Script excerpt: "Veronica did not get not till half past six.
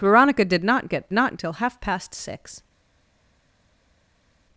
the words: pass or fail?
pass